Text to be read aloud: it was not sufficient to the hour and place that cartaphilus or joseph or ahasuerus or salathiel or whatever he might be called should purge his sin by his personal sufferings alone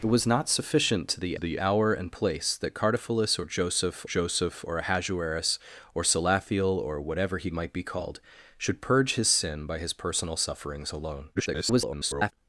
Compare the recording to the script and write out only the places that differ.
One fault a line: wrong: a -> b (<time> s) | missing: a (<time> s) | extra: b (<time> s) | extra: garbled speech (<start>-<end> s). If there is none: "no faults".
extra: the (1.4 s)
extra: joseph (4.0 s)
extra: garbled speech (11.3-12.3 s)